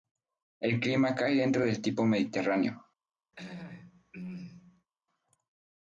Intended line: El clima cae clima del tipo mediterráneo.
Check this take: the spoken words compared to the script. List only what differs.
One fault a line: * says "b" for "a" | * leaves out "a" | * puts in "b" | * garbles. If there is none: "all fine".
* says "dentro" for "clima"